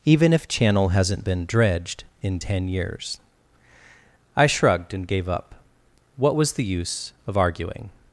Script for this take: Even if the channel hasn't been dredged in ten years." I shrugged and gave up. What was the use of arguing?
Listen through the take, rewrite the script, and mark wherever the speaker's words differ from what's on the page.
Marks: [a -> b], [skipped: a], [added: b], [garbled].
Even if [skipped: the] channel hasn't been dredged in ten years." I shrugged and gave up. What was the use of arguing?